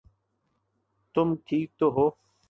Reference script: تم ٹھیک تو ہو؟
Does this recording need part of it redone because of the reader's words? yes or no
no